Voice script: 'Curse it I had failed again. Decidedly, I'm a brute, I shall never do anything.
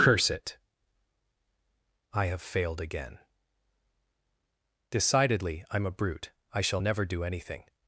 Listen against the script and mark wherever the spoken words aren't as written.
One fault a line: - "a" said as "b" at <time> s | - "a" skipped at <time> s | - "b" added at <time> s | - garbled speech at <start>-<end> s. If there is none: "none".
- "had" said as "have" at 2.2 s